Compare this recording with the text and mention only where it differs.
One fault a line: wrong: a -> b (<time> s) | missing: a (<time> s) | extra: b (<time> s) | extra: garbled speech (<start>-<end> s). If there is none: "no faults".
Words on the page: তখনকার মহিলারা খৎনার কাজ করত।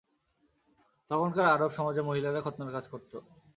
extra: আরব সমাজে (1.4 s)